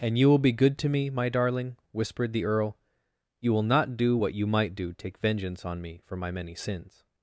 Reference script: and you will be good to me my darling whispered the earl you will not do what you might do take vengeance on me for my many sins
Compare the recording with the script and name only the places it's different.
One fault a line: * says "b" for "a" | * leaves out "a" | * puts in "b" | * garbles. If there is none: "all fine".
all fine